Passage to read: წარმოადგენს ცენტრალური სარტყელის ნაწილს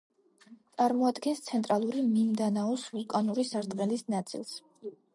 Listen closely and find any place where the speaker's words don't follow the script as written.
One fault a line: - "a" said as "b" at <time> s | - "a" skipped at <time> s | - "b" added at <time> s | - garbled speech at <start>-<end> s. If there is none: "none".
- "მინდანაოს ვულკანური" added at 2.1 s